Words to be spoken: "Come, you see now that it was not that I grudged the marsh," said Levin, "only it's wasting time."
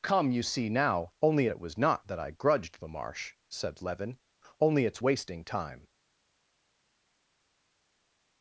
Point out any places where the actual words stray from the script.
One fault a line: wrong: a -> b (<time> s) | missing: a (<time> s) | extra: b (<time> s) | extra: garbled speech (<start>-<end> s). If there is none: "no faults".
wrong: that -> only (1.2 s)